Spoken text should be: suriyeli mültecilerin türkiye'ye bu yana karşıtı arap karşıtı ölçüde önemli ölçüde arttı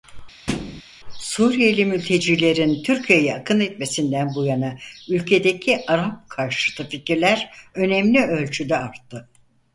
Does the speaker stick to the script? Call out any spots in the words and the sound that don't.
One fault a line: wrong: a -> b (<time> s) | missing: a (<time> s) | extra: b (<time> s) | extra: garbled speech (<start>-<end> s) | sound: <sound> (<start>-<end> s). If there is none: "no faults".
sound: thud (0.5-0.8 s)
extra: akın etmesinden (3.3 s)
wrong: karşıtı -> ülkedeki (5.1 s)
wrong: ölçüde -> fikirler (6.9 s)